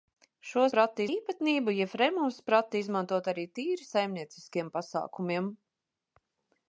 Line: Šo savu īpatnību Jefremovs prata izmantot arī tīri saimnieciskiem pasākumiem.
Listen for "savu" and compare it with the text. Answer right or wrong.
wrong